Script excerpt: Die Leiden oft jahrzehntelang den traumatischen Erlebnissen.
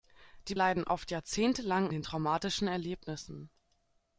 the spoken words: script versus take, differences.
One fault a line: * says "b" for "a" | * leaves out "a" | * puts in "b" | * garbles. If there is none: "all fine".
all fine